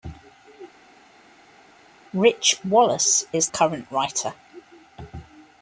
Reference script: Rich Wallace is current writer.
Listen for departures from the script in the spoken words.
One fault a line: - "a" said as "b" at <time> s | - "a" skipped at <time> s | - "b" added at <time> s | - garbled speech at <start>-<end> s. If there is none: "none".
none